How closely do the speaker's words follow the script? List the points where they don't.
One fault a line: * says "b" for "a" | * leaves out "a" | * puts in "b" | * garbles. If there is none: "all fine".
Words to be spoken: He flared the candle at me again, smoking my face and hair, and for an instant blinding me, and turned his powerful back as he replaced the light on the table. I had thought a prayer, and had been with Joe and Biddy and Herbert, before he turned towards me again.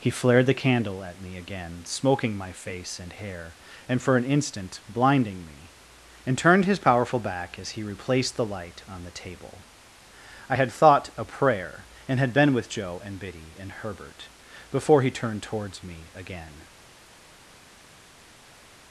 all fine